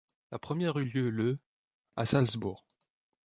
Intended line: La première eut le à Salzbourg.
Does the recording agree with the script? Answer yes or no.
no